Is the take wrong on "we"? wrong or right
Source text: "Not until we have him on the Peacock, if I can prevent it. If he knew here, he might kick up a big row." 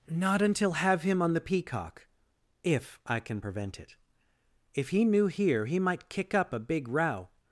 wrong